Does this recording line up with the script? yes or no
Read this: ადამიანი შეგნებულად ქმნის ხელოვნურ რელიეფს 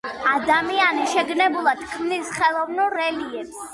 yes